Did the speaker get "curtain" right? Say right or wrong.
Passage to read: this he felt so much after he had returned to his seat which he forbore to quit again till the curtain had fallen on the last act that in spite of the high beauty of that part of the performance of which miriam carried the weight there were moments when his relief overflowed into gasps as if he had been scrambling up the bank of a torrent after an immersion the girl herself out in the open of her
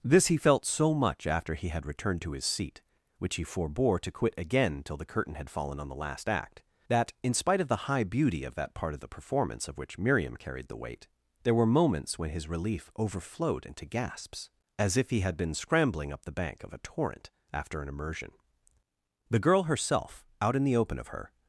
right